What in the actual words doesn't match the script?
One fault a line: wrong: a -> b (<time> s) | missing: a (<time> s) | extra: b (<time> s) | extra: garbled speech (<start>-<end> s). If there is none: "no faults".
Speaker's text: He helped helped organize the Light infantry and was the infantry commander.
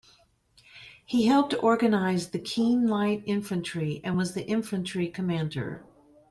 missing: helped (1.5 s)
extra: Keene (2.4 s)